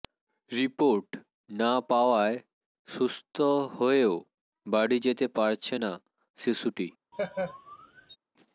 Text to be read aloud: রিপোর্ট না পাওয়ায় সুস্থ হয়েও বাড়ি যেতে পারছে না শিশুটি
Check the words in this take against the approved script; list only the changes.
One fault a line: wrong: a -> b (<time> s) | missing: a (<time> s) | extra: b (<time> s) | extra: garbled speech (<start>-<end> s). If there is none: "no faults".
no faults